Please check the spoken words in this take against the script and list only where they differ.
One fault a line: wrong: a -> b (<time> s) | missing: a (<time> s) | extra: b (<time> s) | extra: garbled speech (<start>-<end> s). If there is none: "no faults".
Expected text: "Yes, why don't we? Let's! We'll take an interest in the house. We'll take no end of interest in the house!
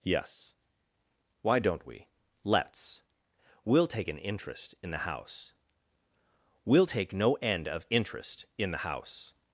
no faults